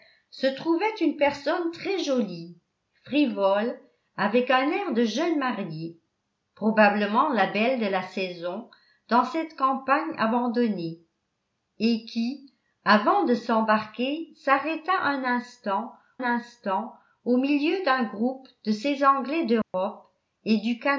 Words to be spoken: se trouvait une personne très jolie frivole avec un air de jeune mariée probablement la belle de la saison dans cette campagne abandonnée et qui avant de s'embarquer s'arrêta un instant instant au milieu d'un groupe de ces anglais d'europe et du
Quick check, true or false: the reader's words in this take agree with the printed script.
true